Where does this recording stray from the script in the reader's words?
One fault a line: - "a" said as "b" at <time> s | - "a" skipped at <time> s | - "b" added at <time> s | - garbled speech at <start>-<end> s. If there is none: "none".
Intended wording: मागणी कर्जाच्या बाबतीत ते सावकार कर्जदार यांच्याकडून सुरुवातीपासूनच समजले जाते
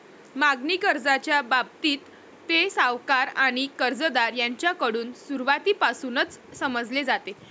- "आणि" added at 3.4 s